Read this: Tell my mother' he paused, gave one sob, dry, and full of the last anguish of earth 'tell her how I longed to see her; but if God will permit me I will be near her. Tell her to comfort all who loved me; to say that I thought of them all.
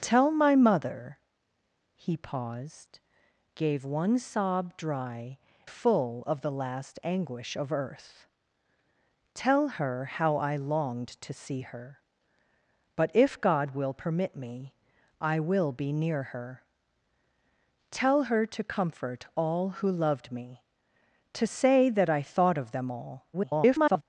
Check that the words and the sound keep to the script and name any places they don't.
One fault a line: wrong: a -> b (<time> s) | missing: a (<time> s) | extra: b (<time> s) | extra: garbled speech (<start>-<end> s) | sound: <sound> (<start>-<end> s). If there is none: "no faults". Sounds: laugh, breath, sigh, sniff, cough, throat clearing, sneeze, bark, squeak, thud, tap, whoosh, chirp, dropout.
missing: and (5.4 s)
extra: garbled speech (23.3-24.0 s)